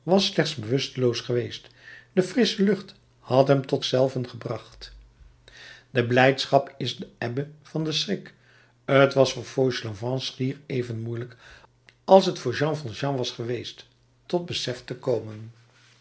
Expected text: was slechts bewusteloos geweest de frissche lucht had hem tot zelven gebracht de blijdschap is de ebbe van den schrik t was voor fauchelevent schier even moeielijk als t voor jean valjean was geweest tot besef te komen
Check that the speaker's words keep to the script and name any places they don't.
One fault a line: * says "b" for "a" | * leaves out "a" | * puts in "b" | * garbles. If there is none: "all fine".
all fine